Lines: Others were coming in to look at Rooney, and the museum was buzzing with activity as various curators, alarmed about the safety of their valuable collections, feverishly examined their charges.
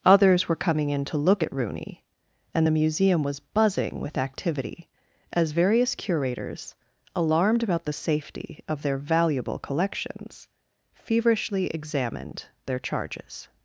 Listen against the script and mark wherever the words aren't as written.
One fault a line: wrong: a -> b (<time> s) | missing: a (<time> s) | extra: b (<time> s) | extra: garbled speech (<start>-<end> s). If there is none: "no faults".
no faults